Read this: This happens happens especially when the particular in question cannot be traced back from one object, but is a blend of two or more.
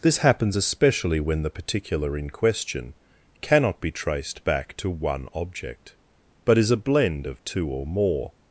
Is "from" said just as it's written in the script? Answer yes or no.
no